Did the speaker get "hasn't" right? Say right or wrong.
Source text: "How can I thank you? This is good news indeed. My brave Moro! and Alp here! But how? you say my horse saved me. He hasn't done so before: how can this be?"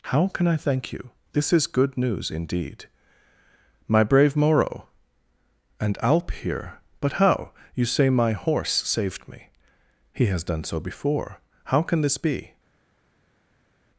wrong